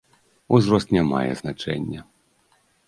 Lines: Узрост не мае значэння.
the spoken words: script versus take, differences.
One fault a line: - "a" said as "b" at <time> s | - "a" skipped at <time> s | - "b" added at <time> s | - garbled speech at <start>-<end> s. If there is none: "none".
none